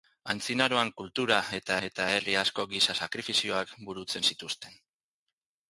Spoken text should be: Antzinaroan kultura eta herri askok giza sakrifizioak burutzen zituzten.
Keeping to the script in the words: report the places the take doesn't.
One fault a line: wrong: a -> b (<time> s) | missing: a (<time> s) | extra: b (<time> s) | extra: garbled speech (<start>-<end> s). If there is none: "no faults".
extra: eta (1.9 s)